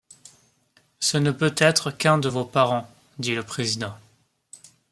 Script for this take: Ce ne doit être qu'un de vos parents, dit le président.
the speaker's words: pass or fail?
fail